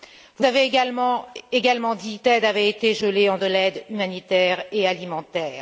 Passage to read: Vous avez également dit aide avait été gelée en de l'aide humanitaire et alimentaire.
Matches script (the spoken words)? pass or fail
pass